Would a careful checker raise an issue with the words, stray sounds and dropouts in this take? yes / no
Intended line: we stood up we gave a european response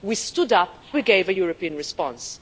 no